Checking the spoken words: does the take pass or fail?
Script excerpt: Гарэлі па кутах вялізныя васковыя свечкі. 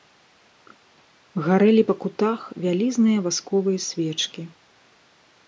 pass